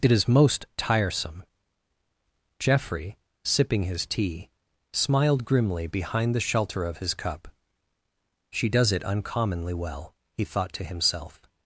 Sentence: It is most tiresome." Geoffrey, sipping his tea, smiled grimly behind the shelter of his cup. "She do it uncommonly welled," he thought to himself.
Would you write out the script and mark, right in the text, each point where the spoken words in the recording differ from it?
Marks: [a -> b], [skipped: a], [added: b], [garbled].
It is most tiresome." Geoffrey, sipping his tea, smiled grimly behind the shelter of his cup. "She [do -> does] it uncommonly [welled," -> well] he thought to himself.